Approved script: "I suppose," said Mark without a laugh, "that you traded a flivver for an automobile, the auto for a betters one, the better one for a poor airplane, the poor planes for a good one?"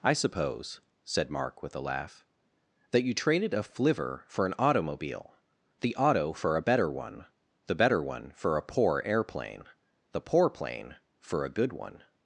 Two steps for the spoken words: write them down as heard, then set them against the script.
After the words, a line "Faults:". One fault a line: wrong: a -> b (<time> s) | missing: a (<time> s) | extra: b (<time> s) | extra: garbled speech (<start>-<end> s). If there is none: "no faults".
"I suppose," said Mark with a laugh, "that you traded a flivver for an automobile, the auto for a better one, the better one for a poor airplane, the poor plane for a good one?"
Faults:
wrong: without -> with (1.6 s)
wrong: betters -> better (6.6 s)
wrong: planes -> plane (10.5 s)